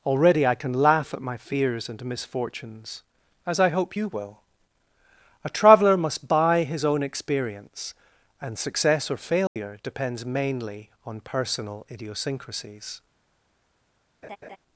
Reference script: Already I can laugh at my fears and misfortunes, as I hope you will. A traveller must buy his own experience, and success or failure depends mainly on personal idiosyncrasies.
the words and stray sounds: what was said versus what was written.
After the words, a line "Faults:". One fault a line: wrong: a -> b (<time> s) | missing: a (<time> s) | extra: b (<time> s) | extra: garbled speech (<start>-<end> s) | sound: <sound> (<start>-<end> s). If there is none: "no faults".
Already I can laugh at my fears and misfortunes, as I hope you will. A traveller must buy his own experience, and success or failure depends mainly on personal idiosyncrasies.
Faults:
sound: dropout (9.5-9.6 s)
sound: laugh (14.2-14.6 s)